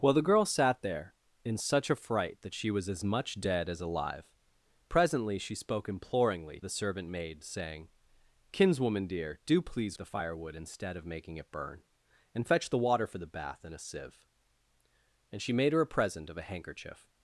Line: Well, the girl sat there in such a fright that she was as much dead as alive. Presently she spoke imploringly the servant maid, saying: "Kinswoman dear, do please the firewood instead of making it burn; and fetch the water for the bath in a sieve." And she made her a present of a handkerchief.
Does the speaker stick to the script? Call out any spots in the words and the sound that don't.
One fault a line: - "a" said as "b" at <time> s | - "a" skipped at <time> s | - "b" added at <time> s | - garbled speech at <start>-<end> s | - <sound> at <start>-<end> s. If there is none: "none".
none